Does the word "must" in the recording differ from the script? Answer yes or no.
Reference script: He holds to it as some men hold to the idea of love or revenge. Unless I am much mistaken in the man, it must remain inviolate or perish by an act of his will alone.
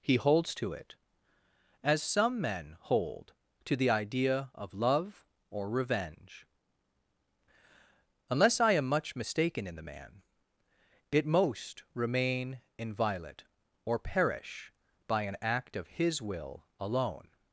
yes